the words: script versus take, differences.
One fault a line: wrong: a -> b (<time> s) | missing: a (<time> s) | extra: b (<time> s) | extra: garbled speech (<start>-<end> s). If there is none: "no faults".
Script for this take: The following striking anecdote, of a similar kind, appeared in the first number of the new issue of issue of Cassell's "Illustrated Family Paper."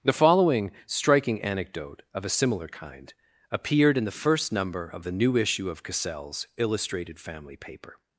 missing: issue of (5.8 s)